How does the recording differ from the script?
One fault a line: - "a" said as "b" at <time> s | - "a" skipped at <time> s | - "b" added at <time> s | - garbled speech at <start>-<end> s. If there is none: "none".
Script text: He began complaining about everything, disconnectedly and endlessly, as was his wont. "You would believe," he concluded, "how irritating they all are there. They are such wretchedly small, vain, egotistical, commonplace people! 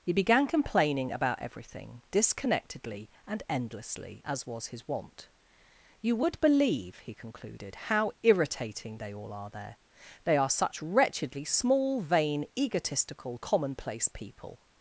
none